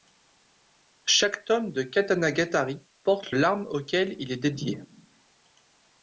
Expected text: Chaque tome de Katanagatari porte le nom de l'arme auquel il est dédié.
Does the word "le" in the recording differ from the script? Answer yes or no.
yes